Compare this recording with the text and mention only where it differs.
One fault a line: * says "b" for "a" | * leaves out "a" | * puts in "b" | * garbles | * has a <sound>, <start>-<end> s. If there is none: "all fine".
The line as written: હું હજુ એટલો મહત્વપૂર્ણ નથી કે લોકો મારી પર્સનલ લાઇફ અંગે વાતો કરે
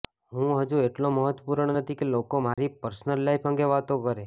* has a dropout, 2.5-2.6 s